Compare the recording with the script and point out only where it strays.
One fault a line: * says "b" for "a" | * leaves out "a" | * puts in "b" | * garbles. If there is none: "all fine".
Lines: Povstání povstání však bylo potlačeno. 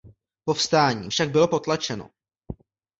* leaves out "povstání"